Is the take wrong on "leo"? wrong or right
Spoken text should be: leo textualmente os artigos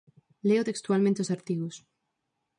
right